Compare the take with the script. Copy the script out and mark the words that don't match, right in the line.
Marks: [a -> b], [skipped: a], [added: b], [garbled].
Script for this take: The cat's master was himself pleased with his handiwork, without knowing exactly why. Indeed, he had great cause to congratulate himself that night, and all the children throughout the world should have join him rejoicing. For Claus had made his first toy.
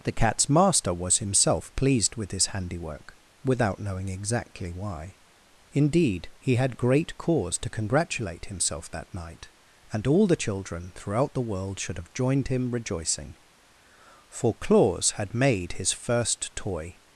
The cat's master was himself pleased with his handiwork, without knowing exactly why. Indeed, he had great cause to congratulate himself that night, and all the children throughout the world should have [join -> joined] him rejoicing. For Claus had made his first toy.